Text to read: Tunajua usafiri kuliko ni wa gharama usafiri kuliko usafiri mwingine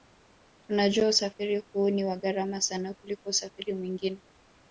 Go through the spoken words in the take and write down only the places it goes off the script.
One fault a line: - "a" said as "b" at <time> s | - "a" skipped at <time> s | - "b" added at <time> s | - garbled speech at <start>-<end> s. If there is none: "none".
- "kuliko" said as "huu" at 1.7 s
- "usafiri" said as "sana" at 2.6 s